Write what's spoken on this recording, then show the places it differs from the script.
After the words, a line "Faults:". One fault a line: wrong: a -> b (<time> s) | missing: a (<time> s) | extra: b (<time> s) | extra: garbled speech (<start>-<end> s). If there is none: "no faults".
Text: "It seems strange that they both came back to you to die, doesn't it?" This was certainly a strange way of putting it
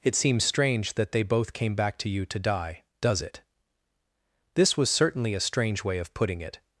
"It seems strange that they both came back to you to die, does it?" This was certainly a strange way of putting it
Faults:
wrong: doesn't -> does (3.0 s)